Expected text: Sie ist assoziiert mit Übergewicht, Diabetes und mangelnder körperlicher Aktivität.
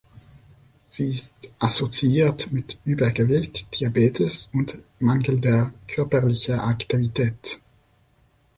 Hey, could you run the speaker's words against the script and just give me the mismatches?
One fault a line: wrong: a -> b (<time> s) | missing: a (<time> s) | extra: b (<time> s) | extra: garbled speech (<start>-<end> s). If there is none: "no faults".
no faults